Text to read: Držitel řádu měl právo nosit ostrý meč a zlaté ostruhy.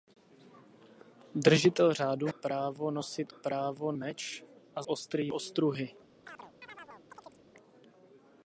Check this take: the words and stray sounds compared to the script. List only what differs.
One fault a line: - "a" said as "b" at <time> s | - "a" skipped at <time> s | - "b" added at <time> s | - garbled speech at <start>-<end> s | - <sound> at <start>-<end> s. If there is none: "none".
- "měl" skipped at 2.3 s
- "ostrý" said as "právo" at 3.3 s
- "zlaté" said as "ostrý" at 4.9 s
- chirp at 6.2-7.4 s